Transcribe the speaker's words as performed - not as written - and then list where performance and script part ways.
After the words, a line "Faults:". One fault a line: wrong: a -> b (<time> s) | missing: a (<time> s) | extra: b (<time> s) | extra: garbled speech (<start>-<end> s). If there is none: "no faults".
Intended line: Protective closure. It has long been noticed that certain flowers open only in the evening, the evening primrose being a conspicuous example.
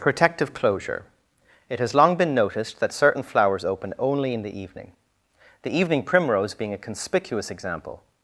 Protective closure. It has long been noticed that certain flowers open only in the evening, the evening primrose being a conspicuous example.
Faults:
no faults